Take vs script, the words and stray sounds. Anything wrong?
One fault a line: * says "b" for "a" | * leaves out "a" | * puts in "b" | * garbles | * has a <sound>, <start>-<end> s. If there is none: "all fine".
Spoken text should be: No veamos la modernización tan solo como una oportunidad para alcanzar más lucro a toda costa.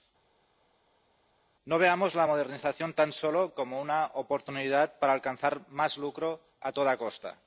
all fine